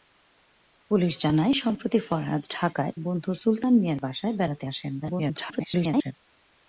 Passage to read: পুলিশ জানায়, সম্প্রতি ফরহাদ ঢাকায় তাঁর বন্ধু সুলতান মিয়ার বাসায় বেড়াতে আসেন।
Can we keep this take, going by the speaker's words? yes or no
no